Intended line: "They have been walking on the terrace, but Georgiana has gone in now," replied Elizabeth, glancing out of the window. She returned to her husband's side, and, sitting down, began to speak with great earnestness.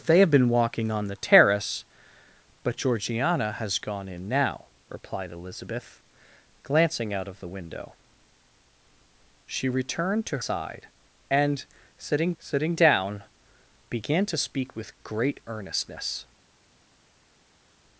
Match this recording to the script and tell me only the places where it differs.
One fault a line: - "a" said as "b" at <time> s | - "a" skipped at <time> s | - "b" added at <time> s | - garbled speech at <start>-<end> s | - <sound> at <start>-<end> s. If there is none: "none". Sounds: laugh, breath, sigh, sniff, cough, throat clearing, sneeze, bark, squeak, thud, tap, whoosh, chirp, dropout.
- "her husband's" skipped at 10.4 s
- "sitting" added at 12.4 s